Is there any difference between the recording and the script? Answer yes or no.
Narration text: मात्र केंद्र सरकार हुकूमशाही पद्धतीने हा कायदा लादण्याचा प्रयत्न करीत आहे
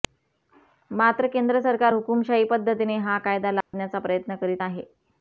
no